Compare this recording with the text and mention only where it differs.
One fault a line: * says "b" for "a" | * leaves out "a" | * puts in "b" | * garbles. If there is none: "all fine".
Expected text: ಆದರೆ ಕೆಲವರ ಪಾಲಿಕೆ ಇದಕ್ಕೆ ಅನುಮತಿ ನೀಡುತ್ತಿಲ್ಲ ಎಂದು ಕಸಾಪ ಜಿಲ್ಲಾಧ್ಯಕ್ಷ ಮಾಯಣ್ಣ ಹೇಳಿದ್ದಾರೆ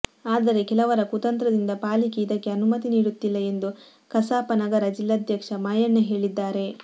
* puts in "ಕುತಂತ್ರದಿಂದ"
* puts in "ನಗರ"